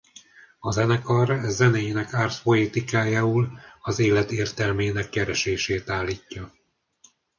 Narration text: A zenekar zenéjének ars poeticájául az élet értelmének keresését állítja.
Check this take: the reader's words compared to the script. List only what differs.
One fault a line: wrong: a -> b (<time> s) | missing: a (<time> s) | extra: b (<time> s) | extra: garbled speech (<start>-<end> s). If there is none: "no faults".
no faults